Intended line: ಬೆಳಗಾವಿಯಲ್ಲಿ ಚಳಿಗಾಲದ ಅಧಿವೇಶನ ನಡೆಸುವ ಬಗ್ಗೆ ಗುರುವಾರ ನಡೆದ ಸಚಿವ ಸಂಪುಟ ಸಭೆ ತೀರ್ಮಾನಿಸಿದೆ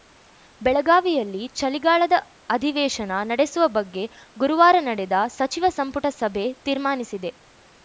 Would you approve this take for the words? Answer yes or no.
yes